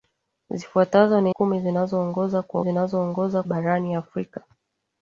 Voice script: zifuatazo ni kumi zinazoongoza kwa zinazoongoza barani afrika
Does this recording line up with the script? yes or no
yes